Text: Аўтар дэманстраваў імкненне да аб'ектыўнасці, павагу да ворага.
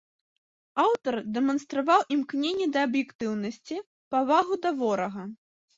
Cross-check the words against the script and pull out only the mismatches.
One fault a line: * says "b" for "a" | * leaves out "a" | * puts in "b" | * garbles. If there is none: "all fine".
all fine